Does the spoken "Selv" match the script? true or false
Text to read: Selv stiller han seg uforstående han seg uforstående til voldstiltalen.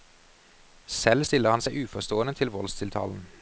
true